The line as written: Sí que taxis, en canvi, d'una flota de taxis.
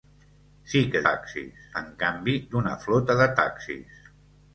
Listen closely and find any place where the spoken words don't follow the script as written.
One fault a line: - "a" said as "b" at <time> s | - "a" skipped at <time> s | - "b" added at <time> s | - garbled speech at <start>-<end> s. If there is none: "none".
none